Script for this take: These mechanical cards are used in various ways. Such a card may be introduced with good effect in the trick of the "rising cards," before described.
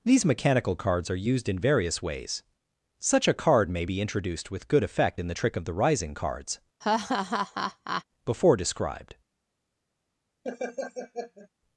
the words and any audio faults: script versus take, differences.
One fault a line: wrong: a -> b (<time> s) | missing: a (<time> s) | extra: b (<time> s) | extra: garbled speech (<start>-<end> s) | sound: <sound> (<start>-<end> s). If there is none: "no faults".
sound: laugh (6.8-8.0 s)
sound: laugh (10.4-11.5 s)